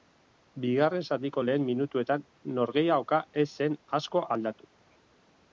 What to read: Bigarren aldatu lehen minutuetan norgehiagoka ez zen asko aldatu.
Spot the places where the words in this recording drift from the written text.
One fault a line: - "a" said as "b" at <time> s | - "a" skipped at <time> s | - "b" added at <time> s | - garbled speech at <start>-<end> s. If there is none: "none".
- "aldatu" said as "zatiko" at 1.1 s